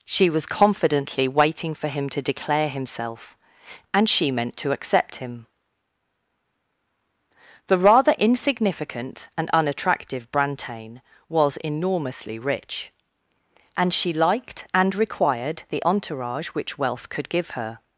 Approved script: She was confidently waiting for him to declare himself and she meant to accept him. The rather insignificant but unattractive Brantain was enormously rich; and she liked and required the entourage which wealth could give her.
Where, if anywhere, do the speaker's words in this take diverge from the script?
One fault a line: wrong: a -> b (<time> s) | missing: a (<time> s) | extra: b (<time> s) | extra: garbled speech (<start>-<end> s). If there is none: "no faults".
wrong: but -> and (9.4 s)